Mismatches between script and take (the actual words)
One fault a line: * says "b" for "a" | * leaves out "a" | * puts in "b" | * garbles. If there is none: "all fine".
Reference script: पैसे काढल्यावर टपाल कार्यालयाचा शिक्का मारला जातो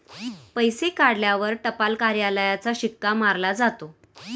all fine